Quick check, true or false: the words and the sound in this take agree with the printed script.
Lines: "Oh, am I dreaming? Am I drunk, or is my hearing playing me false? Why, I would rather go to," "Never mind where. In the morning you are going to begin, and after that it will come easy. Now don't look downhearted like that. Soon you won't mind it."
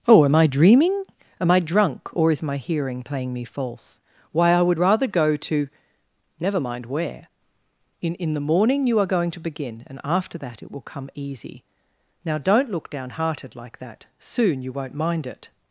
false